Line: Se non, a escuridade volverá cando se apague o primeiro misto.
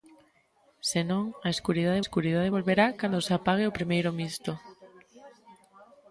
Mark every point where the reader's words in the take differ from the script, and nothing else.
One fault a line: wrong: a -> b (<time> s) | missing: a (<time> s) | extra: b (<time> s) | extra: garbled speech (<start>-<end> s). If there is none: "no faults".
extra: escuridade (2.0 s)